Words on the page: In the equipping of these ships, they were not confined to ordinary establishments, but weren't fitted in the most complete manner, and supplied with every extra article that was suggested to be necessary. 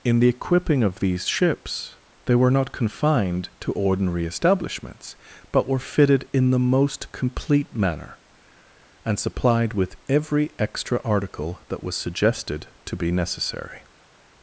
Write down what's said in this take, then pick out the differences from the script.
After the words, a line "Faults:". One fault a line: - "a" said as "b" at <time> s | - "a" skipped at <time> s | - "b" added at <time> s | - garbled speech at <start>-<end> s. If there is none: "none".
In the equipping of these ships, they were not confined to ordinary establishments, but were fitted in the most complete manner, and supplied with every extra article that was suggested to be necessary.
Faults:
- "weren't" said as "were" at 5.7 s